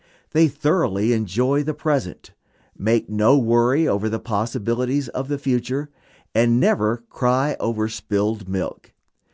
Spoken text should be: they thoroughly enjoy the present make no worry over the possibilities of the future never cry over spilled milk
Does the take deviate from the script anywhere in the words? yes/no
yes